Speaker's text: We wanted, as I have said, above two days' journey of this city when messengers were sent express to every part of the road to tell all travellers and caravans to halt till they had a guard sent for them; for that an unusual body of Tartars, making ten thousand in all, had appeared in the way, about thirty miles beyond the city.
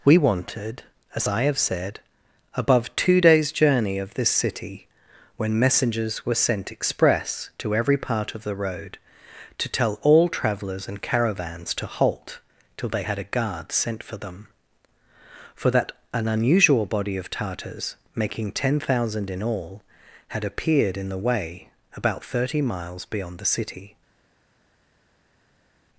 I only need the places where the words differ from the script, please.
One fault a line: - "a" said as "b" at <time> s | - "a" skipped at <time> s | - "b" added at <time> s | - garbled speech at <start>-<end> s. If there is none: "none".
none